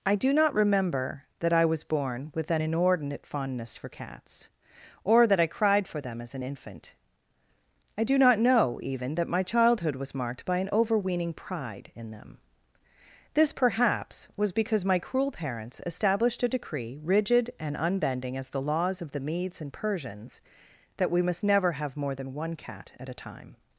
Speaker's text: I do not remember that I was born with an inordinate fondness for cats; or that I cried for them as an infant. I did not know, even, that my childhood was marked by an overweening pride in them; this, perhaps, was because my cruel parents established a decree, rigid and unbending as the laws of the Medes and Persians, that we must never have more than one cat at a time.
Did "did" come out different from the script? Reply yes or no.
yes